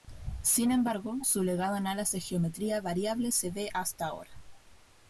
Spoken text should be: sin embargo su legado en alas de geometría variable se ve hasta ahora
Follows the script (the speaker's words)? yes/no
yes